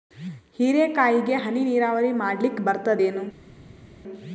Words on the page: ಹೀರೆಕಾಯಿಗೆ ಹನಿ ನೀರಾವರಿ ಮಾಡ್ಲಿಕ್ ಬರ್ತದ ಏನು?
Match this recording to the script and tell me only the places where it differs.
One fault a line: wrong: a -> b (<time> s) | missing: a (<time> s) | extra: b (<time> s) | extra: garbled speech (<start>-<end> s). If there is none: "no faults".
no faults